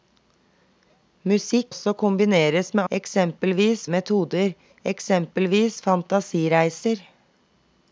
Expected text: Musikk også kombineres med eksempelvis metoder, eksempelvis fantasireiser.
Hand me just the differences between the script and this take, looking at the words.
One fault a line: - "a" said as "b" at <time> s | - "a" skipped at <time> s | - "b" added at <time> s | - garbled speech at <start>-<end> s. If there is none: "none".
none